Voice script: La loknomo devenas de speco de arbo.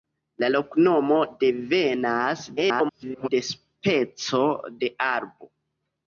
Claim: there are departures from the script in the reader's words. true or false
true